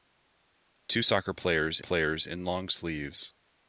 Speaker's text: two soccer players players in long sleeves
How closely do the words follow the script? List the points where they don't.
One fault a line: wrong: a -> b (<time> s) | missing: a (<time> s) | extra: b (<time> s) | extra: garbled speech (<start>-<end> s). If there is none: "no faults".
no faults